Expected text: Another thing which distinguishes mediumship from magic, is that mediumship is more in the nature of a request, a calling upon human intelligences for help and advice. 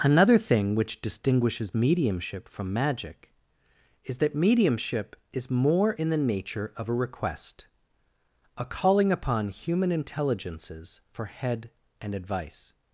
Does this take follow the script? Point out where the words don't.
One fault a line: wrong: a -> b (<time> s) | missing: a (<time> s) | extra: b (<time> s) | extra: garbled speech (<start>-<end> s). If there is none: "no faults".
wrong: help -> head (11.3 s)